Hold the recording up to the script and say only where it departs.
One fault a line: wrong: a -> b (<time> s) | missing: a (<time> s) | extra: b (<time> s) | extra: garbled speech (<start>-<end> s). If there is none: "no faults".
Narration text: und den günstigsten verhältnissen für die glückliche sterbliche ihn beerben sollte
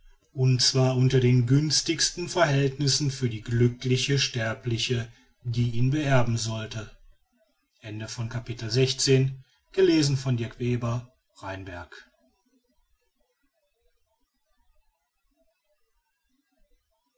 extra: zwar unter (0.6 s)
extra: die (5.4 s)